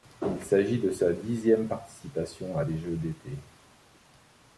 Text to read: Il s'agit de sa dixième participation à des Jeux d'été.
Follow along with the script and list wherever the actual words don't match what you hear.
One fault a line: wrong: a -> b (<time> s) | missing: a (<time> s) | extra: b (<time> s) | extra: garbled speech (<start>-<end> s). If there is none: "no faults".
no faults